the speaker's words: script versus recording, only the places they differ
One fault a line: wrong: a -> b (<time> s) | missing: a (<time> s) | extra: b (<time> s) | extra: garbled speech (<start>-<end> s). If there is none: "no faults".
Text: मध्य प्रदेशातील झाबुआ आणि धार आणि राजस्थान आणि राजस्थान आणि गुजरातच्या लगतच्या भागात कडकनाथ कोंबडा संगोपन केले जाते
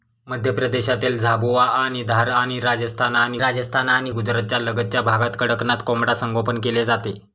no faults